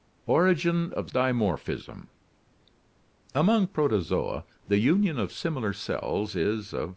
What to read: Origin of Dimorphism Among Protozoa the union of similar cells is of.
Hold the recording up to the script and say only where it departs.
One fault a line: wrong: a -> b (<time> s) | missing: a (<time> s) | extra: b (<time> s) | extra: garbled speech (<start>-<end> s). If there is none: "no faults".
no faults